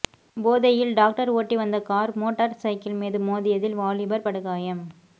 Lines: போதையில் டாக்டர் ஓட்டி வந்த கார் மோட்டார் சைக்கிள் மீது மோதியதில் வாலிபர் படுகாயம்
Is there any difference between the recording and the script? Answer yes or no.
no